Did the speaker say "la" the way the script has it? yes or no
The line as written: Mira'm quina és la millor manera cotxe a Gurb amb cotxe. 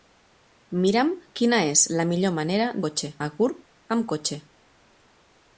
yes